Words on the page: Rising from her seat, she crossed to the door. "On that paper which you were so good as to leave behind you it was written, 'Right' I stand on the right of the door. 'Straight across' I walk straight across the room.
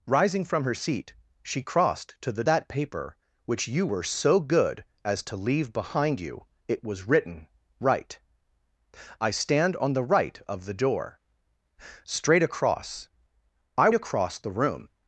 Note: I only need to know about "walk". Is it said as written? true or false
false